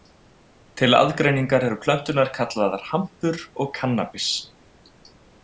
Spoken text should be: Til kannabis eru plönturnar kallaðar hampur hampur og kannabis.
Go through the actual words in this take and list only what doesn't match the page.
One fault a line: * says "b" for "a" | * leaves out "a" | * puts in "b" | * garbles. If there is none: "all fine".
* says "aðgreiningar" for "kannabis"
* leaves out "hampur"